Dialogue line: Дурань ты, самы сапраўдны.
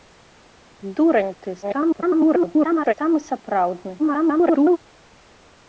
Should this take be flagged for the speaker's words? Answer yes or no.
yes